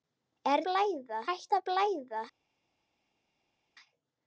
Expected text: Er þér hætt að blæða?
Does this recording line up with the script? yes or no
no